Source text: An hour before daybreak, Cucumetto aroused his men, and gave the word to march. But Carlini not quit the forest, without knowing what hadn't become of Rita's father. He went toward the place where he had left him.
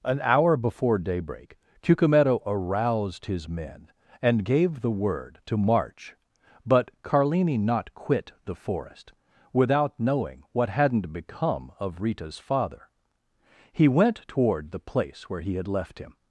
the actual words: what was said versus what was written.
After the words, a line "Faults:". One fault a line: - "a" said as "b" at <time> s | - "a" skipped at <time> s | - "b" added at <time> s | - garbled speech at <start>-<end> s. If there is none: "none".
An hour before daybreak, Cucumetto aroused his men, and gave the word to march. But Carlini not quit the forest, without knowing what hadn't become of Rita's father. He went toward the place where he had left him.
Faults:
none